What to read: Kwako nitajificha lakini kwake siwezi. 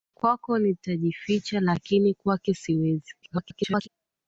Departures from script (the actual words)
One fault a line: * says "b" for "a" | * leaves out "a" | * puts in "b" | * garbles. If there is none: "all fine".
* garbles